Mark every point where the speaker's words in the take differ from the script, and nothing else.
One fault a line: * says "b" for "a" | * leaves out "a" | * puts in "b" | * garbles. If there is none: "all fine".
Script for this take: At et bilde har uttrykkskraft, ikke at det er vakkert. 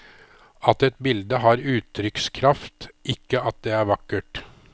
all fine